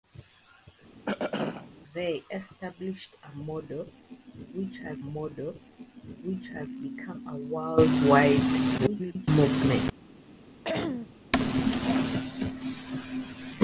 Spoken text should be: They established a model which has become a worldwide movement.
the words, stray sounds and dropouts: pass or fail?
fail